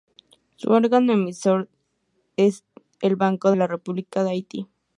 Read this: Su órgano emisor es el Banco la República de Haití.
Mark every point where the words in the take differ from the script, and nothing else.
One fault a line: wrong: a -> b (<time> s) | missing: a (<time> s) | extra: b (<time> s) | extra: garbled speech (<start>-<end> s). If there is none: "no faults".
no faults